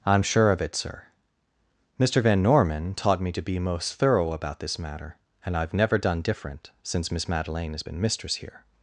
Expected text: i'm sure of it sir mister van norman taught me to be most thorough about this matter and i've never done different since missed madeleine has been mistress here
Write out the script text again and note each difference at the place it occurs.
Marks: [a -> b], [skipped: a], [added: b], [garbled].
i'm sure of it sir mister van norman taught me to be most thorough about this matter and i've never done different since [missed -> miss] madeleine has been mistress here